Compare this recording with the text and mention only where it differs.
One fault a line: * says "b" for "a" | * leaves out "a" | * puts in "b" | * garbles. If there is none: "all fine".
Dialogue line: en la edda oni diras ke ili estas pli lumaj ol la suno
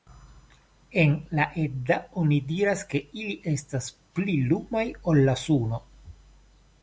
all fine